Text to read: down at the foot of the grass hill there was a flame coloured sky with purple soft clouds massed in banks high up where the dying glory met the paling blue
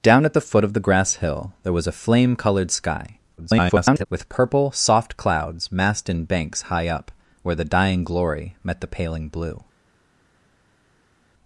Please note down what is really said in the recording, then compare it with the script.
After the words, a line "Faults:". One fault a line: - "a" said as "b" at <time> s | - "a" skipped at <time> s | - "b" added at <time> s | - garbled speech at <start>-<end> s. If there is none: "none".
down at the foot of the grass hill there was a flame coloured sky [garbled] with purple soft clouds massed in banks high up where the dying glory met the paling blue
Faults:
- garbled speech at 3.4-4.1 s